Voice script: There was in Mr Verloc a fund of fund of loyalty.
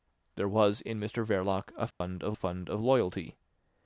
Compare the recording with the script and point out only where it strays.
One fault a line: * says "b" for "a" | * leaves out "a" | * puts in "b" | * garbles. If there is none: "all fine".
all fine